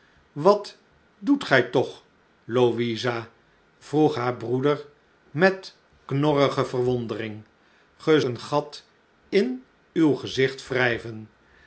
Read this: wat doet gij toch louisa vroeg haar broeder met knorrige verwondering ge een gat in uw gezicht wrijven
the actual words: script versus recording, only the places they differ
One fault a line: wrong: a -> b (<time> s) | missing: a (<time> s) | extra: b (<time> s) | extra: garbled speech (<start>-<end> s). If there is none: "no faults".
no faults